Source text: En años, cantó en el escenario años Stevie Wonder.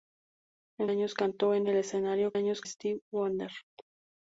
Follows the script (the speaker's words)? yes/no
yes